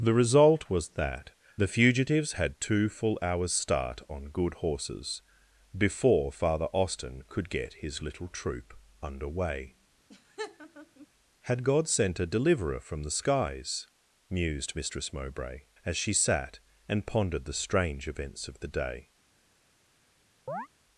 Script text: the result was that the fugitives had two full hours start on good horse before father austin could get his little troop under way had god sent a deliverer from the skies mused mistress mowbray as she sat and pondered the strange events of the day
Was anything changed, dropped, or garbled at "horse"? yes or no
yes